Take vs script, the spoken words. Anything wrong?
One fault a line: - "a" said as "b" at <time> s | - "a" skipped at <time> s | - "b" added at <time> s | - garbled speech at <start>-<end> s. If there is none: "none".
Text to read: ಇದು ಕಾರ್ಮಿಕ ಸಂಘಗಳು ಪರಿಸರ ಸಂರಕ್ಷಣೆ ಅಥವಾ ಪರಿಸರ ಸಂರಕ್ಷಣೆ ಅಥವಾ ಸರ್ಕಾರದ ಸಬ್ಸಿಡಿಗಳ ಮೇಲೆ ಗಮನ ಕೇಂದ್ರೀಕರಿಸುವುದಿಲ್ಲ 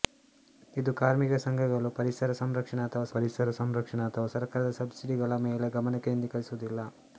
none